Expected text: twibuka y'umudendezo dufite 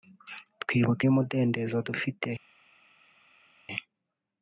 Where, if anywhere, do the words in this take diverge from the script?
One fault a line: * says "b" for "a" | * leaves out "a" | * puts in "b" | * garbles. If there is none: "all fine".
all fine